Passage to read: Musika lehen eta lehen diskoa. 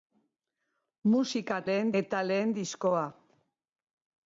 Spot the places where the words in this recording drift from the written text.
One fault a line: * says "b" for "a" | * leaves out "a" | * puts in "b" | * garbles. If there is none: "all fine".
all fine